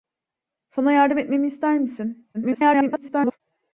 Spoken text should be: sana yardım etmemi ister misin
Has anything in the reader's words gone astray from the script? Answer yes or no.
yes